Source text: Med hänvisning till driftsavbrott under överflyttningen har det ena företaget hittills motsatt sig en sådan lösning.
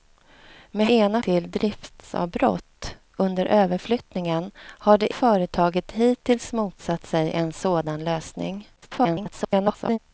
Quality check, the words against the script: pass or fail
fail